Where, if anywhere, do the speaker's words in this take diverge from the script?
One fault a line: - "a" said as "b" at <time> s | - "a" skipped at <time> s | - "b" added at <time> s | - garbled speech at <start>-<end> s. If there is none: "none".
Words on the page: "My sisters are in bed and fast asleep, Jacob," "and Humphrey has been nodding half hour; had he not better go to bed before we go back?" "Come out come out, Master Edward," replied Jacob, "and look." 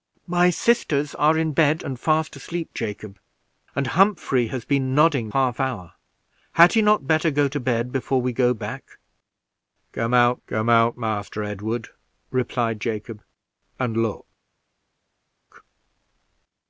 none